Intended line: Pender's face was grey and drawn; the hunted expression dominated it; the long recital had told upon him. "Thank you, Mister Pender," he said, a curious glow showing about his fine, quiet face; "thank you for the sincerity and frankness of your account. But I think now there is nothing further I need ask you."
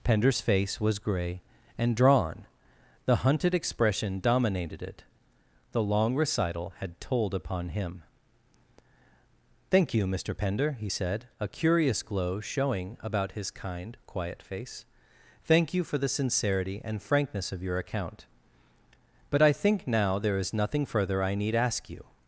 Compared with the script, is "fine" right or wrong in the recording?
wrong